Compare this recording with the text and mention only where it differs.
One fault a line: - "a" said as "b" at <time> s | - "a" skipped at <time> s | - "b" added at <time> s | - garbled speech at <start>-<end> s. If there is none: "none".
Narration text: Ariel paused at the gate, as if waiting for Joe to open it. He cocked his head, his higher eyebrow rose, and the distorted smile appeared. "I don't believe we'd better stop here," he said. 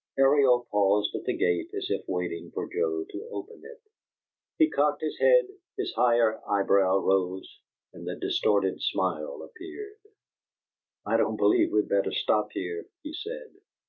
none